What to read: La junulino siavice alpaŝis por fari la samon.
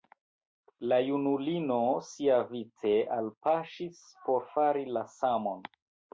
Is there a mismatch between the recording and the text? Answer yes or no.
no